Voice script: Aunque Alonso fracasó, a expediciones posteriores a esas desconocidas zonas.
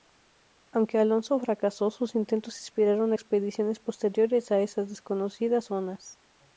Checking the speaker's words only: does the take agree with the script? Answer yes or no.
no